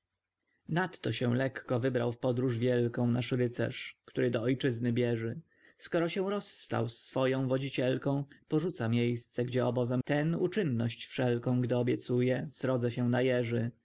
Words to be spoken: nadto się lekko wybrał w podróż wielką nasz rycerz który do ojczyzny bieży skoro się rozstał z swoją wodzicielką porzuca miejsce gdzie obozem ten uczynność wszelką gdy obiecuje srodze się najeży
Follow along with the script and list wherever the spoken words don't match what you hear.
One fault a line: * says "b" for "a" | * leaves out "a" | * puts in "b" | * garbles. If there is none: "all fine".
all fine